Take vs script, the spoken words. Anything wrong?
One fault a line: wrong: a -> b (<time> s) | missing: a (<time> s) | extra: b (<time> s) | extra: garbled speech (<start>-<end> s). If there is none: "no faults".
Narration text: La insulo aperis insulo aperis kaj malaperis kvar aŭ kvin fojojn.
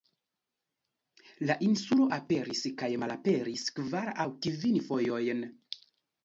missing: insulo aperis (2.6 s)